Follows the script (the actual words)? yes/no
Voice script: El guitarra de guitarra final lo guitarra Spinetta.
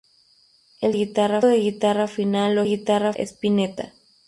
yes